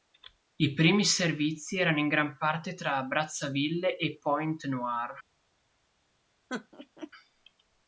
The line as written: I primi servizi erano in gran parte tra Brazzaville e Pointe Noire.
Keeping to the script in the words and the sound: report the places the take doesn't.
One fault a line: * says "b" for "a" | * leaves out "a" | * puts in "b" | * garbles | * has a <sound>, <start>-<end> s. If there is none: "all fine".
* has a laugh, 6.5-7.1 s